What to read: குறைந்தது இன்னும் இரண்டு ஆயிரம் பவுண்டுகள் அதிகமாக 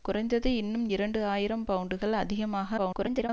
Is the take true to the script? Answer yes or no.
no